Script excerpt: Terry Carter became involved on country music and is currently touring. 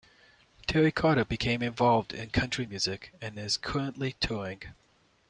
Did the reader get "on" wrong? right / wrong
wrong